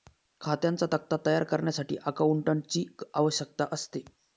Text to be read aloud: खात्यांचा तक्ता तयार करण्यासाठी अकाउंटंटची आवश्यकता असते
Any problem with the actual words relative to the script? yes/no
no